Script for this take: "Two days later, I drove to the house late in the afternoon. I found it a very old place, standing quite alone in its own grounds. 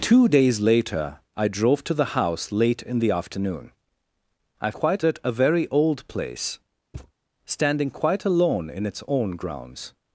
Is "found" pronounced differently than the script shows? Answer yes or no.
yes